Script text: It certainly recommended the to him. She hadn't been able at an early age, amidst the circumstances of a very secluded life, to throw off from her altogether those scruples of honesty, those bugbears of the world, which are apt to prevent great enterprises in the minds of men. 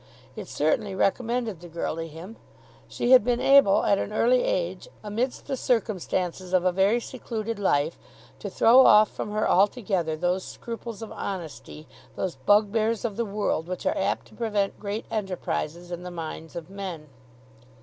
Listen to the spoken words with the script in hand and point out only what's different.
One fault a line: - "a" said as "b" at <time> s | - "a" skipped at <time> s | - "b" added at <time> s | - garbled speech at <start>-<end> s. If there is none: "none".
- "girl" added at 1.7 s
- "hadn't" said as "had" at 3.1 s